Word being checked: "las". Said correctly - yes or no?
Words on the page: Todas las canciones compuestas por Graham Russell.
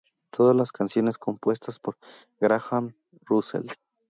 yes